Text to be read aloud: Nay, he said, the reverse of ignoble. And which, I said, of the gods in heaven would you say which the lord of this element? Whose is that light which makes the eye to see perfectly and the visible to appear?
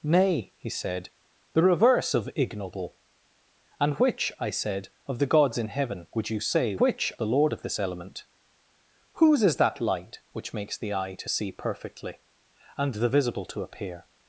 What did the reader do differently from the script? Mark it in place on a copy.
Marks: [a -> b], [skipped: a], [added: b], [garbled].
Nay, he said, the reverse of ignoble. And which, I said, of the gods in heaven would you say which the lord of this element? Whose is that light which makes the eye to see perfectly and the visible to appear?